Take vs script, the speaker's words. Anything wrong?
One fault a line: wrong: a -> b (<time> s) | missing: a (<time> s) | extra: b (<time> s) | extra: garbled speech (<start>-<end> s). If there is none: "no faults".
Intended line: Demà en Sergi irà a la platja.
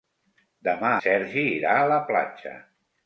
missing: en (0.9 s)